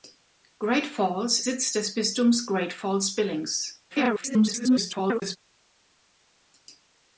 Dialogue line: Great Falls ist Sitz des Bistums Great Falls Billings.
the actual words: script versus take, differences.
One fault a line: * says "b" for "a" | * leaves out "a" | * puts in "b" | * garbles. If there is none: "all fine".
* leaves out "ist"
* garbles